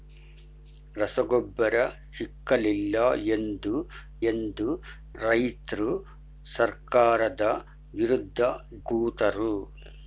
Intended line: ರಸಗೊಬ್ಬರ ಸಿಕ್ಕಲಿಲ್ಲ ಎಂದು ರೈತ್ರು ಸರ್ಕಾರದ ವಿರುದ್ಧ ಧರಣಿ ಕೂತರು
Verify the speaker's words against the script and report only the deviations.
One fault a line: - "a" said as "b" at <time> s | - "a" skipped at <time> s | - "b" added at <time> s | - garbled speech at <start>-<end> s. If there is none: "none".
- "ಎಂದು" added at 4.3 s
- "ಧರಣಿ" skipped at 8.4 s